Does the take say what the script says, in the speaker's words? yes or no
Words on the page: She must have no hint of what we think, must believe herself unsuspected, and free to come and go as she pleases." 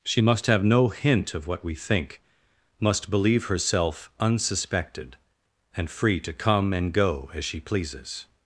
yes